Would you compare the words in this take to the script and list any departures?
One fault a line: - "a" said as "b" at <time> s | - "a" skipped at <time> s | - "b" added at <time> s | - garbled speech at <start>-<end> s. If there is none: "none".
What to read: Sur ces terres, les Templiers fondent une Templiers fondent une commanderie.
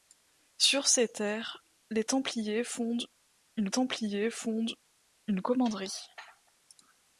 none